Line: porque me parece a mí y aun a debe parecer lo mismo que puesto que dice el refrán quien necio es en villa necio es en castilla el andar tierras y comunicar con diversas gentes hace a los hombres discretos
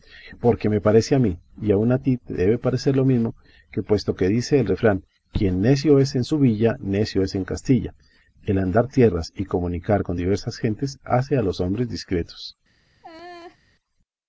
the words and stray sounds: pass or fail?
fail